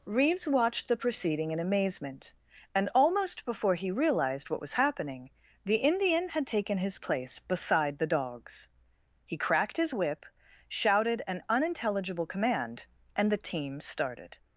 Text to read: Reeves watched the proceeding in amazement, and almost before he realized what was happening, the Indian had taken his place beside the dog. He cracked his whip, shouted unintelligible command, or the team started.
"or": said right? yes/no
no